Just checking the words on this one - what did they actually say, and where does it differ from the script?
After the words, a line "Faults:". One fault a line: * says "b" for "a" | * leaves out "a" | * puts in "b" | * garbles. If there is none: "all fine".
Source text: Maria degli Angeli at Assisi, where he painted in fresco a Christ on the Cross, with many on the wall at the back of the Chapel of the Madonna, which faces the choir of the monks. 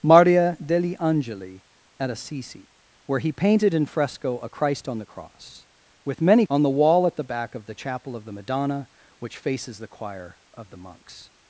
Maria degli Angeli at Assisi, where he painted in fresco a Christ on the Cross, with many on the wall at the back of the Chapel of the Madonna, which faces the choir of the monks.
Faults:
all fine